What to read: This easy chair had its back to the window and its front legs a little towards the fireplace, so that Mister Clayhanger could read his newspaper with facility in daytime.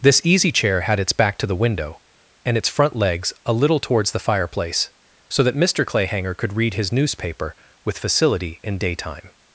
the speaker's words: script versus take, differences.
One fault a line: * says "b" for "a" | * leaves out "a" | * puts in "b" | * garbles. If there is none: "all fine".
all fine